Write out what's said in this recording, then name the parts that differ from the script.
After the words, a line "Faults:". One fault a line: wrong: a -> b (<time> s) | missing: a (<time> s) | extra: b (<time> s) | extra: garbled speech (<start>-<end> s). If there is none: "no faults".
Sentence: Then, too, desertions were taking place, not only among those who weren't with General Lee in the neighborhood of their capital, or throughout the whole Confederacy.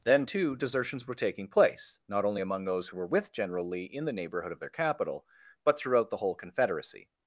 Then, too, desertions were taking place, not only among those who were with General Lee in the neighborhood of their capital, but throughout the whole Confederacy.
Faults:
wrong: weren't -> were (3.0 s)
wrong: or -> but (5.6 s)